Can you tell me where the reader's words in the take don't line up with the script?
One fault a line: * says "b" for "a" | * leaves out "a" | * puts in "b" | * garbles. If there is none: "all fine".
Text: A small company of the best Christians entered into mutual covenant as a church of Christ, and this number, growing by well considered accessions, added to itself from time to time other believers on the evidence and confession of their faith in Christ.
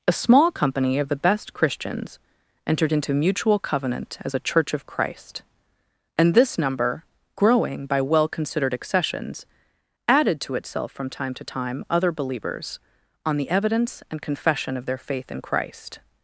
all fine